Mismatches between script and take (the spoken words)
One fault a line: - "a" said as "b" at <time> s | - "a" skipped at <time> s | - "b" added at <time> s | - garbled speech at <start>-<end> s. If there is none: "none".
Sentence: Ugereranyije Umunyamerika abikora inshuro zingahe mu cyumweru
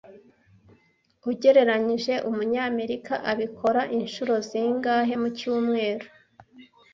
none